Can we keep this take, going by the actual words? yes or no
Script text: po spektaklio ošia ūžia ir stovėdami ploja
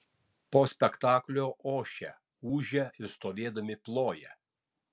yes